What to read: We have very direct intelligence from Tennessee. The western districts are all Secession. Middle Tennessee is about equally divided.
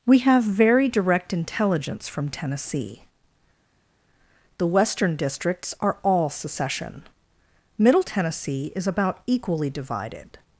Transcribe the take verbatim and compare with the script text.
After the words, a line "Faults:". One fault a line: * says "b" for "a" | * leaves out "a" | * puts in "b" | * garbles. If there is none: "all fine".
We have very direct intelligence from Tennessee. The western districts are all Secession. Middle Tennessee is about equally divided.
Faults:
all fine